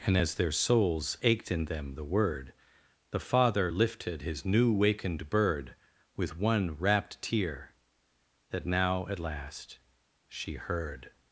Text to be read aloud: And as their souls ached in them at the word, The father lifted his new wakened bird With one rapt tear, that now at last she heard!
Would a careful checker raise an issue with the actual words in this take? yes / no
yes